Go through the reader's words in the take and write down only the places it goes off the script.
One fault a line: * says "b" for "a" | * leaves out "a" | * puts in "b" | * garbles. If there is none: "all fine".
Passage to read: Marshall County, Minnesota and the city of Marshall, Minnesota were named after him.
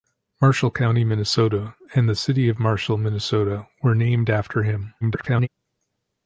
* garbles